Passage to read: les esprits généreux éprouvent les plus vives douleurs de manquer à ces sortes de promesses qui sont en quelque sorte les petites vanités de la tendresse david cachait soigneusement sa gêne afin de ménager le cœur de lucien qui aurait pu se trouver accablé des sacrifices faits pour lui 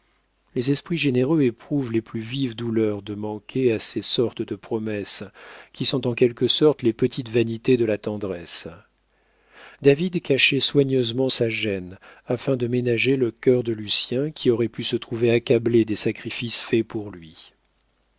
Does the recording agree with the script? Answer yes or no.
yes